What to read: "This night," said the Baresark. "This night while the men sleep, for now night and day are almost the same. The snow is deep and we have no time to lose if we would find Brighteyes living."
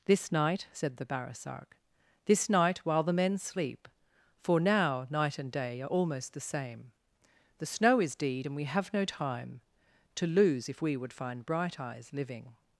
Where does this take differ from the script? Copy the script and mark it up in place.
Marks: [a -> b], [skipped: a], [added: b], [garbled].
"This night," said the Baresark. "This night while the men sleep, for now night and day are almost the same. The snow is [deep -> deed] and we have no time to lose if we would find Brighteyes living."